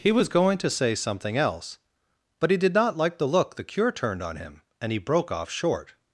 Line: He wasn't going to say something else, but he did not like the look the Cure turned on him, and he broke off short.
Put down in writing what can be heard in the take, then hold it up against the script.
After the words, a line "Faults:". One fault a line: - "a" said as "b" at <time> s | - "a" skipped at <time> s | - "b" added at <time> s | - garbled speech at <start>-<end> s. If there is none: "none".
He was going to say something else, but he did not like the look the Cure turned on him, and he broke off short.
Faults:
- "wasn't" said as "was" at 0.1 s